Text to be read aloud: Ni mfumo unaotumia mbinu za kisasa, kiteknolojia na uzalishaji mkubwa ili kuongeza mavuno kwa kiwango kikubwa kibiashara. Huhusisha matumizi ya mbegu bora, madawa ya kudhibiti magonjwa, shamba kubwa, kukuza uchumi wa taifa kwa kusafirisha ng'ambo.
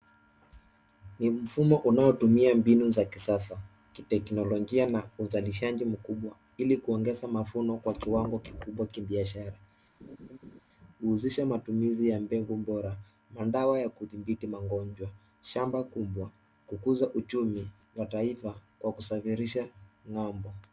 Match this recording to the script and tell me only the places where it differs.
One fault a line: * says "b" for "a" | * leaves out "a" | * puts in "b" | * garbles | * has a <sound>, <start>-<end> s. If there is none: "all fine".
* has a laugh, 10.0-10.6 s